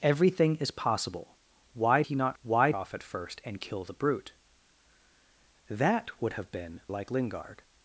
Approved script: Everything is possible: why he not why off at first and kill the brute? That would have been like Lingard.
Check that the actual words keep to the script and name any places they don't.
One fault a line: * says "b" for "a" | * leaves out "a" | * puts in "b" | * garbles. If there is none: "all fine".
all fine